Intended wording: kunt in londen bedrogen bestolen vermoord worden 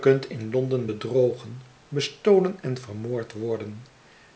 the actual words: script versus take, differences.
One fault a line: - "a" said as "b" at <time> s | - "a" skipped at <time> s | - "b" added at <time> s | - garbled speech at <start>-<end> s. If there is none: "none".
- "en" added at 2.6 s